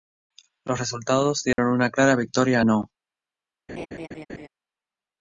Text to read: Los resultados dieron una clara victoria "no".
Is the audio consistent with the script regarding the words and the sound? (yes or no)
no